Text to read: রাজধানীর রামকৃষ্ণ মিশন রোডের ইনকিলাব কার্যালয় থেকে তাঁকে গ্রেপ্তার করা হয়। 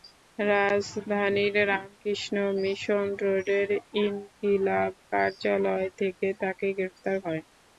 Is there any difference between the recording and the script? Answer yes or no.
yes